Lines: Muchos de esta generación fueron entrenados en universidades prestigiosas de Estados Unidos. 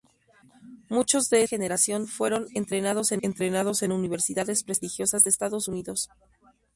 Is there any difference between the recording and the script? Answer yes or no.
yes